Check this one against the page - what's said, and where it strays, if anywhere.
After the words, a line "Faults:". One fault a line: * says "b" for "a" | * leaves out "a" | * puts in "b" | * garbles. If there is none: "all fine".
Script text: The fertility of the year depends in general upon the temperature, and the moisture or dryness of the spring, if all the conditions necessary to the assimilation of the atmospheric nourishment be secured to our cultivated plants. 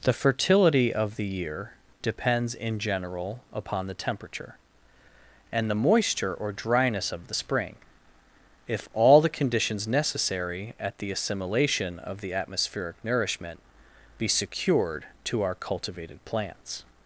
The fertility of the year depends in general upon the temperature, and the moisture or dryness of the spring, if all the conditions necessary at the assimilation of the atmospheric nourishment be secured to our cultivated plants.
Faults:
* says "at" for "to"